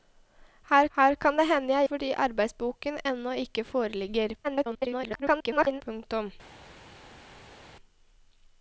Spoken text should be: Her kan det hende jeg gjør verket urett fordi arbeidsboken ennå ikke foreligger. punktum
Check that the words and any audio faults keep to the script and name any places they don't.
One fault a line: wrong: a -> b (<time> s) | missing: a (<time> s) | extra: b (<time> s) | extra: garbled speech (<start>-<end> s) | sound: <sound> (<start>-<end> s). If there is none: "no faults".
extra: her (1.0 s)
missing: gjør verket urett (1.9 s)
extra: garbled speech (4.4-5.8 s)